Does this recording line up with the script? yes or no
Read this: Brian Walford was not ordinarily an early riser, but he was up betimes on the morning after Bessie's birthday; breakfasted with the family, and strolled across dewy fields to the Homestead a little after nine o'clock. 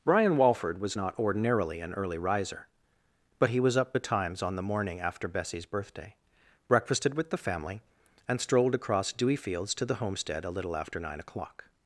yes